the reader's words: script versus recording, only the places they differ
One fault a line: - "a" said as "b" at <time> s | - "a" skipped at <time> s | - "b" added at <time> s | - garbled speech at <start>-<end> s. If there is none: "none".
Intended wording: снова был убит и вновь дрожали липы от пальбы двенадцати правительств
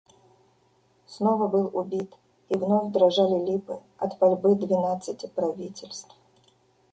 none